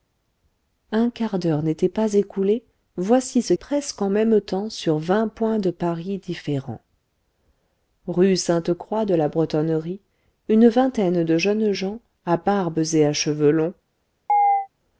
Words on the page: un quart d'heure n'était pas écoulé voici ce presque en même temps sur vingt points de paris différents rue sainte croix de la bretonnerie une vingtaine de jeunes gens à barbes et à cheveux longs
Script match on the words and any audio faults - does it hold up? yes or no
no